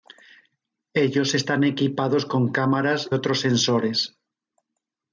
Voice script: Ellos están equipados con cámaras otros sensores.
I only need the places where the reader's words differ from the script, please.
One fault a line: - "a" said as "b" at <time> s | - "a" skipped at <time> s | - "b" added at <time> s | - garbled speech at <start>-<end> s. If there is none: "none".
none